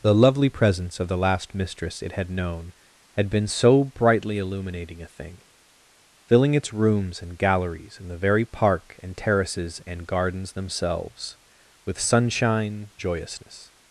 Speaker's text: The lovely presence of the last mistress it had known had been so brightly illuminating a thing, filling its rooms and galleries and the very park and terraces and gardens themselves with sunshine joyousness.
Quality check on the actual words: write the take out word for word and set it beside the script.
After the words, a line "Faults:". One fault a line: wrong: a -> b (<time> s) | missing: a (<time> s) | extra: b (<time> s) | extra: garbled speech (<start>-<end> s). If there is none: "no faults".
The lovely presence of the last mistress it had known had been so brightly illuminating a thing, filling its rooms and galleries and the very park and terraces and gardens themselves with sunshine joyousness.
Faults:
no faults